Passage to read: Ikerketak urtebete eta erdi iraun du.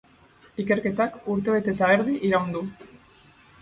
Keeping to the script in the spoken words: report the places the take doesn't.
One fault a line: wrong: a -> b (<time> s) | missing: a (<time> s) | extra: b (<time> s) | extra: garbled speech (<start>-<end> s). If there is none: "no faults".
no faults